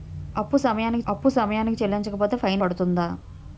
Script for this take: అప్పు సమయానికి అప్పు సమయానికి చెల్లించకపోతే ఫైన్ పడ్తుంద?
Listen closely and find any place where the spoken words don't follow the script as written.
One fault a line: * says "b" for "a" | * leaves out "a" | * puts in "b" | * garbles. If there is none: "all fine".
all fine